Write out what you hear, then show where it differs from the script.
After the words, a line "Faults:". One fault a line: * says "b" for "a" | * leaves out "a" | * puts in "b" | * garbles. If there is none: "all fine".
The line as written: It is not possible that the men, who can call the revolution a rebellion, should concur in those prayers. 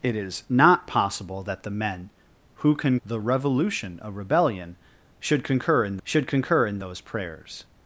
It is not possible that the men, who can the revolution a rebellion, should concur in should concur in those prayers.
Faults:
* leaves out "call"
* puts in "should concur in"